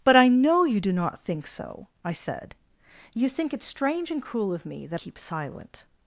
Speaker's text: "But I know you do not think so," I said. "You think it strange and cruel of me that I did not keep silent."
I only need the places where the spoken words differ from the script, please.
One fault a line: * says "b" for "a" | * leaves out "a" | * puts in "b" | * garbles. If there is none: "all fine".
* leaves out "I did not"